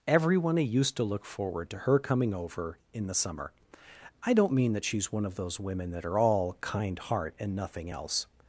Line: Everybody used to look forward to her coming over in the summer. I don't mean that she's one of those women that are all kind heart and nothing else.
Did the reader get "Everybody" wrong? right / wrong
wrong